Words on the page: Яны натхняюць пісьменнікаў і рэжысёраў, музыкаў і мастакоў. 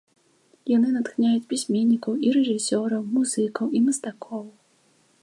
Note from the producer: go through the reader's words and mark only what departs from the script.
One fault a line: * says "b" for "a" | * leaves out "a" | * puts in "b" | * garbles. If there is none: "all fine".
all fine